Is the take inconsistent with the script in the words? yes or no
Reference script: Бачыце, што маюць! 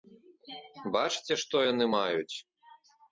yes